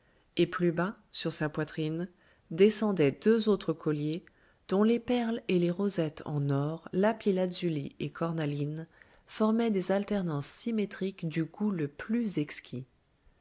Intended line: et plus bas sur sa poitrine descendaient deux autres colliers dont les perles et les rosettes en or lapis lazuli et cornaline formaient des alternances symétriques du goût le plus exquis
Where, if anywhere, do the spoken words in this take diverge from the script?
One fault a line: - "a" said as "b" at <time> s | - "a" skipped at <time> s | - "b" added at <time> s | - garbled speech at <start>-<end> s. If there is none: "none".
none